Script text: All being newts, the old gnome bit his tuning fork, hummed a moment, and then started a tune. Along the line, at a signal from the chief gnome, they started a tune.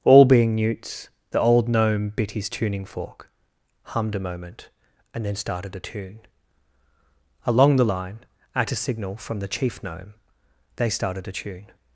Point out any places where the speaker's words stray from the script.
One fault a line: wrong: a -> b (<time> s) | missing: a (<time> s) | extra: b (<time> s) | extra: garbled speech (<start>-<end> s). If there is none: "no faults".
no faults